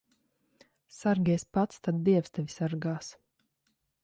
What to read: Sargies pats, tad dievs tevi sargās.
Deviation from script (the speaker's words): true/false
false